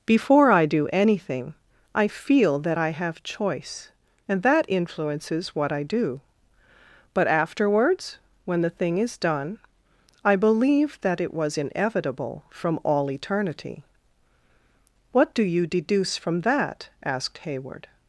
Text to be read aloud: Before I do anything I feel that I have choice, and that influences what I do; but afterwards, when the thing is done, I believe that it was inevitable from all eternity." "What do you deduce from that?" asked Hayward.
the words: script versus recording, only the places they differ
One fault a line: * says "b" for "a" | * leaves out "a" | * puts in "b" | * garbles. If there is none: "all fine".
all fine